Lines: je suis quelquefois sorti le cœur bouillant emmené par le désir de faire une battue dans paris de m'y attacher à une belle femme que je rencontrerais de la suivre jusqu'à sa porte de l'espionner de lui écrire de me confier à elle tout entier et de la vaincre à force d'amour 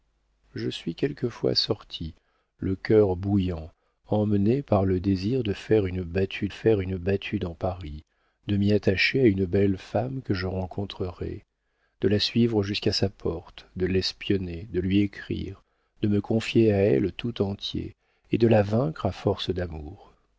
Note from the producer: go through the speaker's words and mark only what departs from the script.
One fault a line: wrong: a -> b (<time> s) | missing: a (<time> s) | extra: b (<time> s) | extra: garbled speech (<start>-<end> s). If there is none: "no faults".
extra: faire une battue (6.5 s)